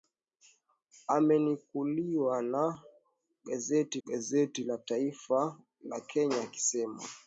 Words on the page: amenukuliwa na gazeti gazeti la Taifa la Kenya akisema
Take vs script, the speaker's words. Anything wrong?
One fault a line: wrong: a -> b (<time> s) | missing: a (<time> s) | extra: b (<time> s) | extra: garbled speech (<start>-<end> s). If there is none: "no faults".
no faults